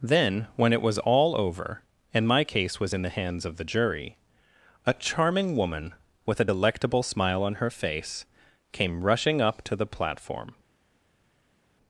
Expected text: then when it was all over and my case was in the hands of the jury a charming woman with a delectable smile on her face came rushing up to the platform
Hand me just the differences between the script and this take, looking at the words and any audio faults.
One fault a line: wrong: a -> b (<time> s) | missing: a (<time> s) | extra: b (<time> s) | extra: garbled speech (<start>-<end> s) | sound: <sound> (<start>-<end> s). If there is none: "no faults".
no faults